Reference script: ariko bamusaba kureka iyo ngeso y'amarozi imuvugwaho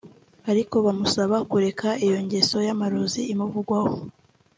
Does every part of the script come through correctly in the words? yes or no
yes